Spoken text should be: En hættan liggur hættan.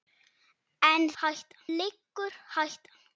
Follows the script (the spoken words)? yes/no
yes